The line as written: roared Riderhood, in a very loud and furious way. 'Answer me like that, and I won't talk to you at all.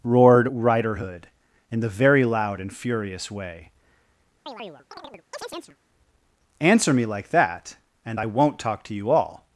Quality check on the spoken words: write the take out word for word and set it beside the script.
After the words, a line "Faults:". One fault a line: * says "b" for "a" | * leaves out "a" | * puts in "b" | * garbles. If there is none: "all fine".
roared Riderhood, in the very loud and furious way. 'Answer me like that, and I won't talk to you all.
Faults:
* says "the" for "a"
* leaves out "at"